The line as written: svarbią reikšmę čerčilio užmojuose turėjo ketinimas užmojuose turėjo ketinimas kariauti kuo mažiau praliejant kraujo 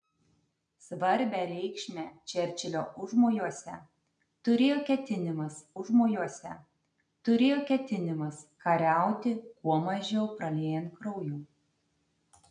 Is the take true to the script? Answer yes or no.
yes